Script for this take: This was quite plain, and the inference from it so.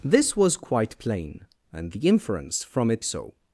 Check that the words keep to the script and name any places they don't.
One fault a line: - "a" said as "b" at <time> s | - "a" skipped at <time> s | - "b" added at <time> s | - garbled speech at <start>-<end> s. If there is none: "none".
none